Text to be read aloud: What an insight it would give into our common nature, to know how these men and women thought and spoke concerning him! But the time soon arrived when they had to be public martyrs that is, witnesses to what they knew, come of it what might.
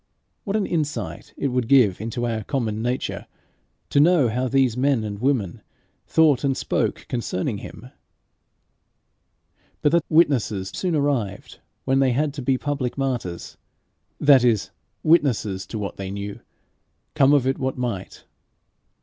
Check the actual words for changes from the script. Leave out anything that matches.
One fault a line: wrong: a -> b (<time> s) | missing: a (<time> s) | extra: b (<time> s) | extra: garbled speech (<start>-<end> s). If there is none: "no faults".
wrong: time -> witnesses (10.1 s)